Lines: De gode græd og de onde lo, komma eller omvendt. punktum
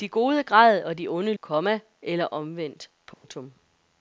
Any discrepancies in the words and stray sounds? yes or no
yes